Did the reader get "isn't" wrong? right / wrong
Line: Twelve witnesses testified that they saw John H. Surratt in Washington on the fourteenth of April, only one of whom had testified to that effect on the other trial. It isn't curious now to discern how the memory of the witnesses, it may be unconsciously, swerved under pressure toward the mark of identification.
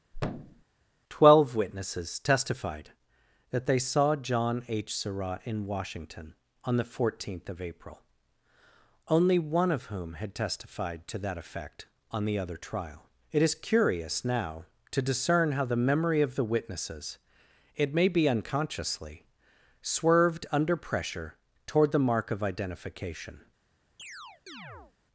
wrong